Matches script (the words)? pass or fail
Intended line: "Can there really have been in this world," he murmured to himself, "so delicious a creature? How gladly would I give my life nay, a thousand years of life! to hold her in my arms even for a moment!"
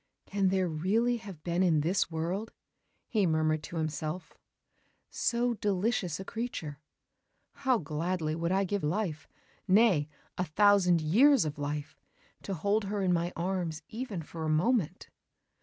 fail